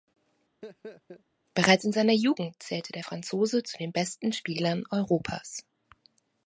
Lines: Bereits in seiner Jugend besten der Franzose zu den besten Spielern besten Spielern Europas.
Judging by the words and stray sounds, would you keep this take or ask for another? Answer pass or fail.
fail